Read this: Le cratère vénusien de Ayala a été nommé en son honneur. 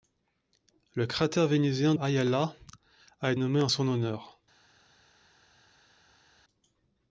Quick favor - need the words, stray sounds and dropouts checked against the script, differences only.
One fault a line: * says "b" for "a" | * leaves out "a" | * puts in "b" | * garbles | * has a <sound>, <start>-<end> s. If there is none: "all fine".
* leaves out "de"
* leaves out "été"